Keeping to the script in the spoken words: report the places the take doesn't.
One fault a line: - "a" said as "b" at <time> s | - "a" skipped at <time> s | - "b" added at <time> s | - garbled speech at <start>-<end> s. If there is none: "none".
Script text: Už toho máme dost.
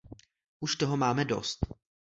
none